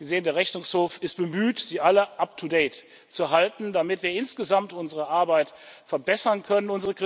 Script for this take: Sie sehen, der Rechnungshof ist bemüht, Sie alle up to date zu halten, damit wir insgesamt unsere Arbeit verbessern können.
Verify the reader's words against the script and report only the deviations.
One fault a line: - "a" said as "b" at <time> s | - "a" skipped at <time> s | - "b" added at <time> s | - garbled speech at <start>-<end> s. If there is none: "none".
none